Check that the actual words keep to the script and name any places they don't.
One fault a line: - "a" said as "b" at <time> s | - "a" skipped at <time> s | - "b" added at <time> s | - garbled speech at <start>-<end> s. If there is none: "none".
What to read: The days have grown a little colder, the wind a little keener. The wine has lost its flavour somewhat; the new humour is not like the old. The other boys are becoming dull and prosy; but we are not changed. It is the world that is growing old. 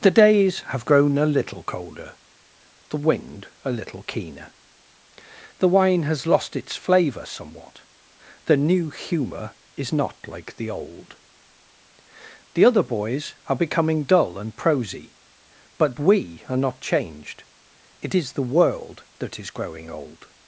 none